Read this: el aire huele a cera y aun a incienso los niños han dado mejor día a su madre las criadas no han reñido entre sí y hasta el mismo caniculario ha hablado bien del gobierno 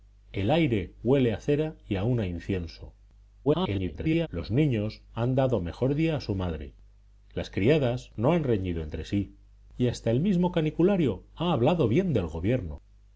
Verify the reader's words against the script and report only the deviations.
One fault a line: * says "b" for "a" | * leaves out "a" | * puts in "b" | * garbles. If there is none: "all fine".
* garbles